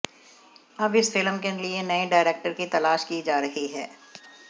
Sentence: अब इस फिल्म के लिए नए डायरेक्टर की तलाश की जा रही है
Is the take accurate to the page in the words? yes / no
yes